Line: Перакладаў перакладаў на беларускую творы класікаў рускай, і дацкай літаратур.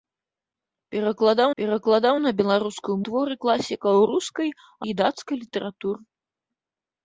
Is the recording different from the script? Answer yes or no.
no